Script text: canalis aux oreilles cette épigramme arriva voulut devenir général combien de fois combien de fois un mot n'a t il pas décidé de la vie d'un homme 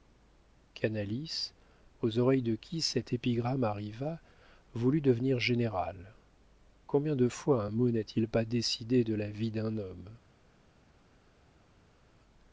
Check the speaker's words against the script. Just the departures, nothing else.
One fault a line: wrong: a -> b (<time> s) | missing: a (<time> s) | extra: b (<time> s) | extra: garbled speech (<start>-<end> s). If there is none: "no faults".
extra: de qui (2.4 s)
missing: combien de fois (7.7 s)